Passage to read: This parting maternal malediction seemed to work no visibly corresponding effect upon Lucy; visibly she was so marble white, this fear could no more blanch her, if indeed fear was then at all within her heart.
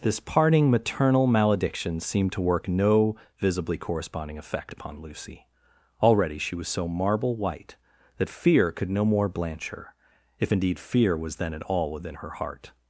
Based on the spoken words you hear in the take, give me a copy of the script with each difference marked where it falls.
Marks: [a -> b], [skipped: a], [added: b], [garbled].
This parting maternal malediction seemed to work no visibly corresponding effect upon Lucy; [visibly -> already] she was so marble white, [this -> that] fear could no more blanch her, if indeed fear was then at all within her heart.